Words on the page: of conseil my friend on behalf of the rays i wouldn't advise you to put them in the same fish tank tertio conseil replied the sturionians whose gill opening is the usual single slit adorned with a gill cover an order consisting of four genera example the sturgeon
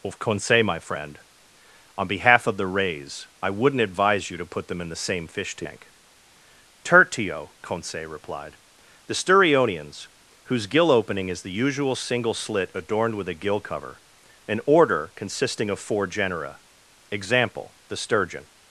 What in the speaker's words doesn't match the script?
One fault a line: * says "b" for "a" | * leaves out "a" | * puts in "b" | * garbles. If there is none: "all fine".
all fine